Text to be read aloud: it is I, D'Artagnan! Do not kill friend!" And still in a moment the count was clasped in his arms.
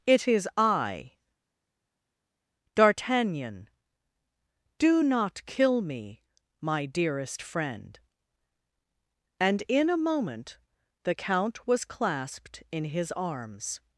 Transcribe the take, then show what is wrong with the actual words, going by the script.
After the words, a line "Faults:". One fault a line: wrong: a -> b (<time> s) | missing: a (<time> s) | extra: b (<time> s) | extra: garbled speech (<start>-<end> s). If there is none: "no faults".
it is I, D'Artagnan! Do not kill me, my dearest friend!" And in a moment the count was clasped in his arms.
Faults:
extra: me my dearest (5.8 s)
missing: still (9.6 s)